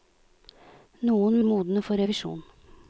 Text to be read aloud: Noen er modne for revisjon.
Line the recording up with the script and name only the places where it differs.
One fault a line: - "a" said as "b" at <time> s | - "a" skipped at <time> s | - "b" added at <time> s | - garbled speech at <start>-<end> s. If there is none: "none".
none